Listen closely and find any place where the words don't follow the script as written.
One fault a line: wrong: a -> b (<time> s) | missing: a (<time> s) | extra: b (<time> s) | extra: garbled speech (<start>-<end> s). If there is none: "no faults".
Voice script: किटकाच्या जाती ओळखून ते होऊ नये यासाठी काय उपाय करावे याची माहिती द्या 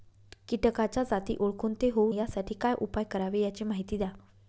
missing: नये (2.1 s)